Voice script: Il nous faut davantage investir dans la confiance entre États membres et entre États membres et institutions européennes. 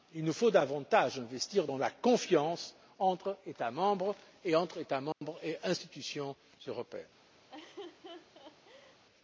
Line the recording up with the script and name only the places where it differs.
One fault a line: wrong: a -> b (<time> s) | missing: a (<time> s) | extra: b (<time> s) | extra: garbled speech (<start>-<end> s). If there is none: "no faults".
no faults